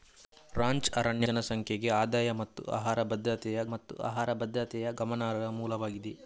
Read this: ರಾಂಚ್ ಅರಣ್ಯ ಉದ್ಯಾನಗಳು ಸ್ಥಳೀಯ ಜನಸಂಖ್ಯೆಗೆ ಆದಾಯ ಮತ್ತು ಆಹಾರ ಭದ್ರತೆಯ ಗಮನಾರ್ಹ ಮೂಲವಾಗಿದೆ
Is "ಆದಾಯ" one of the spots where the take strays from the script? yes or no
yes